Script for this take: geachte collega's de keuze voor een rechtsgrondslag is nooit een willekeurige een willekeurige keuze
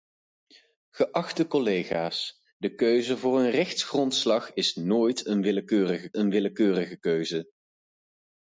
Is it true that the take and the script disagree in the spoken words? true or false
false